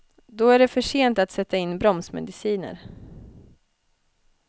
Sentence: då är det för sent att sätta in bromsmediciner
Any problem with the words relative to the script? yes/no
no